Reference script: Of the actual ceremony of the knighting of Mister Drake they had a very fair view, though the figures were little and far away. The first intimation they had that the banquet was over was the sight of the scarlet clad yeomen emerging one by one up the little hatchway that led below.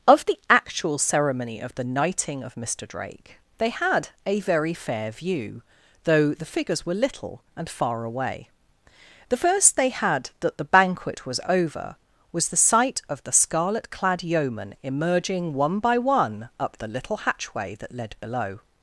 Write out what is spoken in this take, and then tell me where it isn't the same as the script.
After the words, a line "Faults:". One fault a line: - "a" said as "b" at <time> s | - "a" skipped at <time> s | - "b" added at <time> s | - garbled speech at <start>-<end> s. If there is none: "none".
Of the actual ceremony of the knighting of Mister Drake they had a very fair view, though the figures were little and far away. The first they had that the banquet was over was the sight of the scarlet clad yeomen emerging one by one up the little hatchway that led below.
Faults:
- "intimation" skipped at 9.7 s